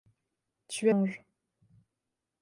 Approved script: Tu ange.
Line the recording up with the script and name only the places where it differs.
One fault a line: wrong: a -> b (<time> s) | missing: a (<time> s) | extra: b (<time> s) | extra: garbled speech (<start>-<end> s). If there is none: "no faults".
no faults